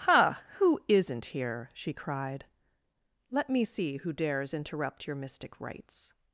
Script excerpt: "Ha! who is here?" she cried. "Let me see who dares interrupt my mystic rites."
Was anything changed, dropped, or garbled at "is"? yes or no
yes